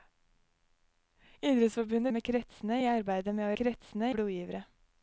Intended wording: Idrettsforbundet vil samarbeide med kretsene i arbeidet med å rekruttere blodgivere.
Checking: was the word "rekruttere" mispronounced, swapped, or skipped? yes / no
yes